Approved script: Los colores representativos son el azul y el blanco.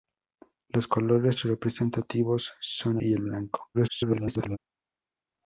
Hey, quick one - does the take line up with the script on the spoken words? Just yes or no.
no